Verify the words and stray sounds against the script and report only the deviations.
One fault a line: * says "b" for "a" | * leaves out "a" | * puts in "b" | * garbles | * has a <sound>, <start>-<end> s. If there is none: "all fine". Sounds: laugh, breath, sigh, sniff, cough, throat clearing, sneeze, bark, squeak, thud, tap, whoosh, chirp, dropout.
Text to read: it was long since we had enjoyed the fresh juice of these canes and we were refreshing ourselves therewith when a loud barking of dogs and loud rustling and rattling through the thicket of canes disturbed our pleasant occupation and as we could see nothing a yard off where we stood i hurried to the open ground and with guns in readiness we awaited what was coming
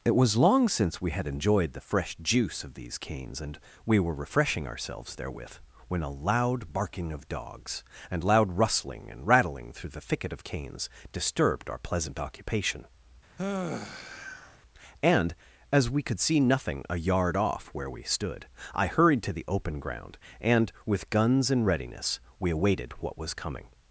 * has a sigh, 13.4-14.6 s